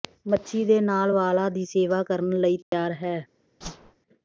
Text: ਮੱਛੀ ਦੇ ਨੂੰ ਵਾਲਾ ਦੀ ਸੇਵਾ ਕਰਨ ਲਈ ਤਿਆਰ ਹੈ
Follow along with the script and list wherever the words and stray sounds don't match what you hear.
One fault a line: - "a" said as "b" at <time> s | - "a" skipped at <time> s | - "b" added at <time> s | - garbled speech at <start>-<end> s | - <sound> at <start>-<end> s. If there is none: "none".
- "ਨੂੰ" said as "ਨਾਲ" at 0.8 s
- dropout at 2.6-2.7 s
- whoosh at 3.6-4.0 s